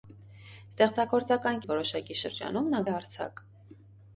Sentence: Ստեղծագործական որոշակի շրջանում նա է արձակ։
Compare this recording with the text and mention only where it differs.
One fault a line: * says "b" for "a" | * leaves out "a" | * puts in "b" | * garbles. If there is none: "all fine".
all fine